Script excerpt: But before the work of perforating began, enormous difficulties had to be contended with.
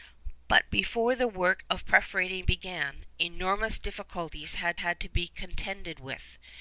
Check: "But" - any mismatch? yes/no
no